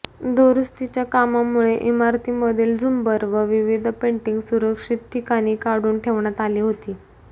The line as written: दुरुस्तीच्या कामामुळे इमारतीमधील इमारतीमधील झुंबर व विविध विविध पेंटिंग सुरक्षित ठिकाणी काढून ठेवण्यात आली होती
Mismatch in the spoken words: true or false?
true